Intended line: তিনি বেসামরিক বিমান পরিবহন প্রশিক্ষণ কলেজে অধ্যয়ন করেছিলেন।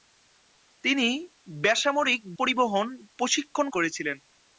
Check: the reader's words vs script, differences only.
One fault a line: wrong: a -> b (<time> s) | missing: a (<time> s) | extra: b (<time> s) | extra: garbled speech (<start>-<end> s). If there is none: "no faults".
missing: বিমান (2.2 s)
missing: কলেজে অধ্যয়ন (3.7 s)